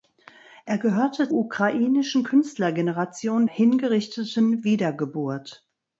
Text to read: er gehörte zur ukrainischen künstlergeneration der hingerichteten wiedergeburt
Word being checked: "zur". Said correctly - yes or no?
no